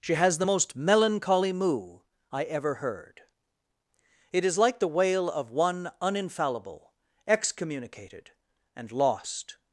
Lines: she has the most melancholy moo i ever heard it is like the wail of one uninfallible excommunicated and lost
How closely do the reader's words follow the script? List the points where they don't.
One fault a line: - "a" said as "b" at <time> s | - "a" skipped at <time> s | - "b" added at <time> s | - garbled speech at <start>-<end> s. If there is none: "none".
none